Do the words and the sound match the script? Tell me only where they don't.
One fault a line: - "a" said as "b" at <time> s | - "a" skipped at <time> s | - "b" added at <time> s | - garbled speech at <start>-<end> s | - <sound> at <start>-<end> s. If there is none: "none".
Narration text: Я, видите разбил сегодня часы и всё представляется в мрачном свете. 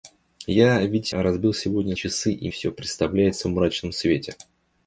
none